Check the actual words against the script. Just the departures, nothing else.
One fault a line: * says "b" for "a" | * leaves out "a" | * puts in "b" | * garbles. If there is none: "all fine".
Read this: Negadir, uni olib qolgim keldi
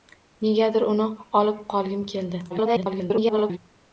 * garbles